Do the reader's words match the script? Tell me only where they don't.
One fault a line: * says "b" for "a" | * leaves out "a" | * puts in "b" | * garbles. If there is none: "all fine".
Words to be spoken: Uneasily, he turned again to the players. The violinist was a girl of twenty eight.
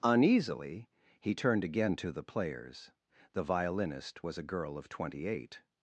all fine